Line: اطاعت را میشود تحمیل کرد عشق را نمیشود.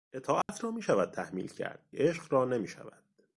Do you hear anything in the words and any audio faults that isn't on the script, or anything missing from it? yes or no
yes